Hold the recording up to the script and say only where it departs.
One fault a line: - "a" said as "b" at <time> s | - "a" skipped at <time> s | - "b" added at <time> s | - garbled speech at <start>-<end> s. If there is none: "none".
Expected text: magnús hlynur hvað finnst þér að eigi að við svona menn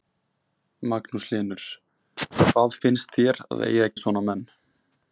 none